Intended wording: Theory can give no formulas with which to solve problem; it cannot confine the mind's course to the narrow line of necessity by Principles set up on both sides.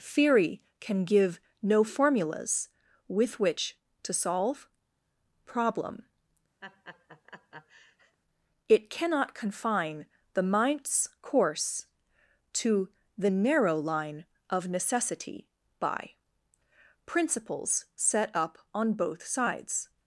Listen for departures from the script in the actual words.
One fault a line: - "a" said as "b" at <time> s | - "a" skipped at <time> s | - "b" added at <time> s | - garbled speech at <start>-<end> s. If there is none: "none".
none